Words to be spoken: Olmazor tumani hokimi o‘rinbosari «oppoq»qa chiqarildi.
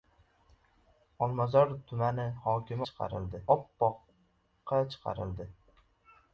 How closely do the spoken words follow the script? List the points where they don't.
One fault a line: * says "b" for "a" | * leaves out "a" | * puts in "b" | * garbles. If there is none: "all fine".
* says "chiqarildi" for "o‘rinbosari"